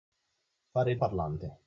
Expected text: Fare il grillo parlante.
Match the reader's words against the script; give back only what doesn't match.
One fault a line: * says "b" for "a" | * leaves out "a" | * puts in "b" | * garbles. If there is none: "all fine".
* leaves out "grillo"